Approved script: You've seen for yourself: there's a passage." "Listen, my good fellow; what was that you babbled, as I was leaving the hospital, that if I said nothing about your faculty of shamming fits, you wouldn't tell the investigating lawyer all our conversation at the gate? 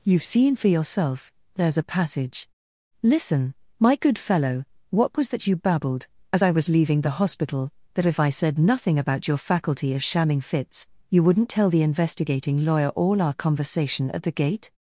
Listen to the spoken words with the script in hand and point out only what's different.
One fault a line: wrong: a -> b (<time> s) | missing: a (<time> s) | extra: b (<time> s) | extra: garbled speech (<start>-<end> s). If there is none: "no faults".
no faults